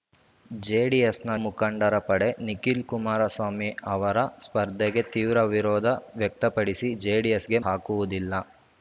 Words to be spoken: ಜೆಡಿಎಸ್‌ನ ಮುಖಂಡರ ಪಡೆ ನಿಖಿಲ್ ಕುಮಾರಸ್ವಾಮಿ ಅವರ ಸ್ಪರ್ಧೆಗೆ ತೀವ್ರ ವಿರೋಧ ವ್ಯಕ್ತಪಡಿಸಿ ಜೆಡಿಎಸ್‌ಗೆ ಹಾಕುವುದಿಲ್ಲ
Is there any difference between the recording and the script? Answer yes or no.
no